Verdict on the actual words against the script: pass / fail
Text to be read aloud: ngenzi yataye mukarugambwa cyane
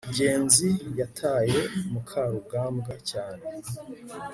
pass